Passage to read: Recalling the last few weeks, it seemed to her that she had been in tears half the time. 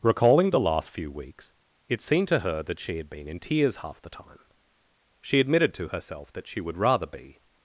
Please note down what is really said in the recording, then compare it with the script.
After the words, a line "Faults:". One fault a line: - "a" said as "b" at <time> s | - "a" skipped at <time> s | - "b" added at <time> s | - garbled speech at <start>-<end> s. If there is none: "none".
Recalling the last few weeks, it seemed to her that she had been in tears half the time. She admitted to herself that she would rather be
Faults:
- "She admitted to herself that she would rather be" added at 5.2 s